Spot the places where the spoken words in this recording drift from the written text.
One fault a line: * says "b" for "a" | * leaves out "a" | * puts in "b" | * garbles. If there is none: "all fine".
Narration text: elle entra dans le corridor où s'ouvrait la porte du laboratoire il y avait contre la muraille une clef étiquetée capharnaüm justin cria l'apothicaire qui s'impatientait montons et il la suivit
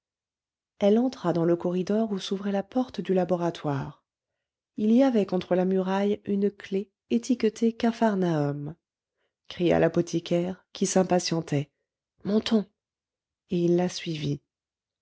* leaves out "justin"